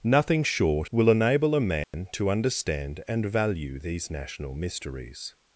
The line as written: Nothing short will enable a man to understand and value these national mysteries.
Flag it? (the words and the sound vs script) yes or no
yes